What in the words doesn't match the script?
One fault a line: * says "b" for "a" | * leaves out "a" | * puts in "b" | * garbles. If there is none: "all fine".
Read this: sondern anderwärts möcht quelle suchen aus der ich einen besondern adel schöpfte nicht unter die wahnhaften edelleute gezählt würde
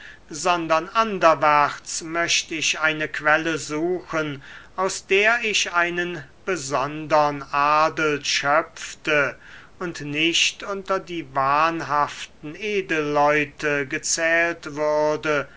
* puts in "ich eine"
* puts in "und"